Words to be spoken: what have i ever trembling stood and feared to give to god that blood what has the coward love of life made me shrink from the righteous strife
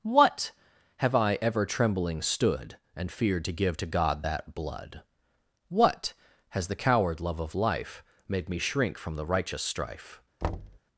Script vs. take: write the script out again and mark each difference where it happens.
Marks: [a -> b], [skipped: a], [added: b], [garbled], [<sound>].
what have i ever trembling stood and feared to give to god that blood what has the coward love of life made me shrink from the righteous strife [thud]